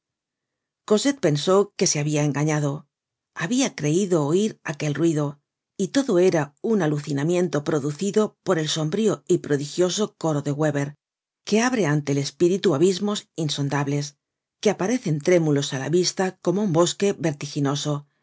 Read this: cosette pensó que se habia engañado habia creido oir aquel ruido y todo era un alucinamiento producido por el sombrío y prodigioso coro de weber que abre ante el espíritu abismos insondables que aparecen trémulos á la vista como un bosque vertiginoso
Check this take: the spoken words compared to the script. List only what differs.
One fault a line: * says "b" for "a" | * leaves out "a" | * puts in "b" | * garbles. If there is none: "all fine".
all fine